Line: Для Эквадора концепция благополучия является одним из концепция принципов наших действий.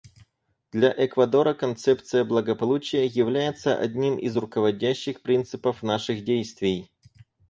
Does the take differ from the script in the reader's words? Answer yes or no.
yes